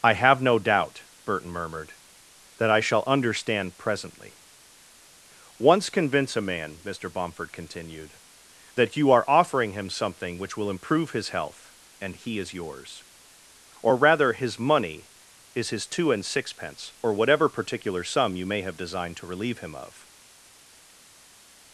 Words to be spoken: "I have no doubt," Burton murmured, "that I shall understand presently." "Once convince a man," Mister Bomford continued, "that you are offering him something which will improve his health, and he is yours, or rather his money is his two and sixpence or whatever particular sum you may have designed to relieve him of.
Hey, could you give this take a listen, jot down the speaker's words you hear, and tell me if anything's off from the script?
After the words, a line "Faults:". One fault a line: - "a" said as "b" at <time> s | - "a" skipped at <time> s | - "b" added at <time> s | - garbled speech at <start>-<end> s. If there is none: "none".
"I have no doubt," Burton murmured, "that I shall understand presently." "Once convince a man," Mister Bomford continued, "that you are offering him something which will improve his health, and he is yours, or rather his money is his two and sixpence or whatever particular sum you may have designed to relieve him of.
Faults:
none